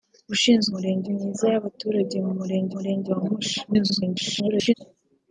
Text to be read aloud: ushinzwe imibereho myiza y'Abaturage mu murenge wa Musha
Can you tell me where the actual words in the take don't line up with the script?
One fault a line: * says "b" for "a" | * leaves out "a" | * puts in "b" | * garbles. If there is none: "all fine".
* says "murenge" for "imibereho"
* puts in "murenge"
* garbles